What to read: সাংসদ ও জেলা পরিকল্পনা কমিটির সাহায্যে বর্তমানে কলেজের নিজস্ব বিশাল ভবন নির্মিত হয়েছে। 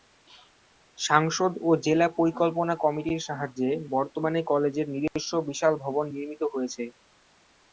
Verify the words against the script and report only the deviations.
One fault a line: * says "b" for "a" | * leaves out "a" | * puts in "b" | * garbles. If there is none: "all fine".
all fine